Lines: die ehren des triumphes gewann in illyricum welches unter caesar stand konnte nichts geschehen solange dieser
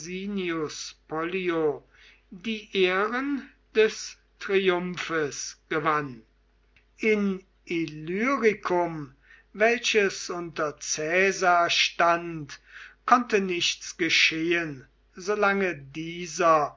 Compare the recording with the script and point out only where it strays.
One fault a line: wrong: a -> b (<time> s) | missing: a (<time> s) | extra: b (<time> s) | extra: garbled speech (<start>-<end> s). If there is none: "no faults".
no faults